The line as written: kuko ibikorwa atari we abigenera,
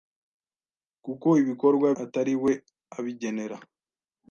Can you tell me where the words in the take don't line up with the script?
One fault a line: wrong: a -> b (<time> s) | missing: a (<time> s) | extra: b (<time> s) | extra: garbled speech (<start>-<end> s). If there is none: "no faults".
no faults